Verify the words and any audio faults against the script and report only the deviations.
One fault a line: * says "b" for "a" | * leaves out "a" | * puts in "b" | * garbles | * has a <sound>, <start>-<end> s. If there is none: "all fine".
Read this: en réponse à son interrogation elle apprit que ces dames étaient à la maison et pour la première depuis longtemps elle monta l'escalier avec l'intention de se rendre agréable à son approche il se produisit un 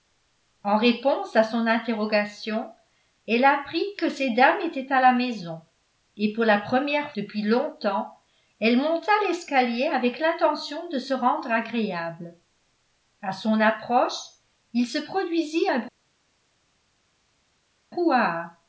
all fine